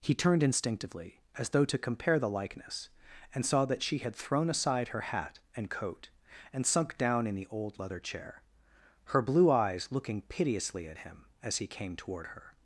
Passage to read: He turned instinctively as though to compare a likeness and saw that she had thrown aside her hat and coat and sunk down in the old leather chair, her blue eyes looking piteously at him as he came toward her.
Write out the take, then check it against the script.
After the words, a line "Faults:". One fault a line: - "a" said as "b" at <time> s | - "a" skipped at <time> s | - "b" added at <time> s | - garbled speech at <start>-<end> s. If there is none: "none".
He turned instinctively as though to compare the likeness and saw that she had thrown aside her hat and coat and sunk down in the old leather chair, her blue eyes looking piteously at him as he came toward her.
Faults:
- "a" said as "the" at 2.2 s